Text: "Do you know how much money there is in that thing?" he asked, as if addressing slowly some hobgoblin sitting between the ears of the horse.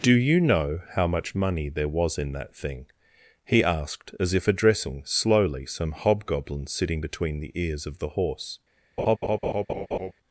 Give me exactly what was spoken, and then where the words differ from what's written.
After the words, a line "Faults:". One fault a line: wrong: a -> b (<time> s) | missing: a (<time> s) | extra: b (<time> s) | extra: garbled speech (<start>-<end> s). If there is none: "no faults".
"Do you know how much money there was in that thing?" he asked, as if addressing slowly some hobgoblin sitting between the ears of the horse.
Faults:
wrong: is -> was (1.9 s)